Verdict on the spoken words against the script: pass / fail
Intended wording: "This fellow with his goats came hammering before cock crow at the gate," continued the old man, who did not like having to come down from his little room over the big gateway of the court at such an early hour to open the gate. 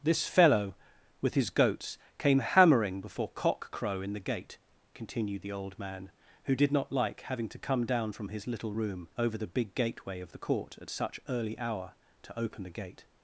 fail